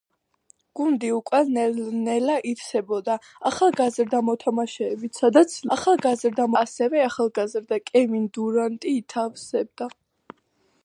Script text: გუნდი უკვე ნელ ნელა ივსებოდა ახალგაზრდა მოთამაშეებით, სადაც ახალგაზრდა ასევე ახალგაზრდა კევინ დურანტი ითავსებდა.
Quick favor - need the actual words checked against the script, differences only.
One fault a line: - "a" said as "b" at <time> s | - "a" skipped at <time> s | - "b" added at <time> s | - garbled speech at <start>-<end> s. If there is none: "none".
none